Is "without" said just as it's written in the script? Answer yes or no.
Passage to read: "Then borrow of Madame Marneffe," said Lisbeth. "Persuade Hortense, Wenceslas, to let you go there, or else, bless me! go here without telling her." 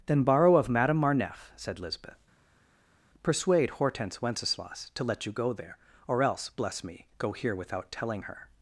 yes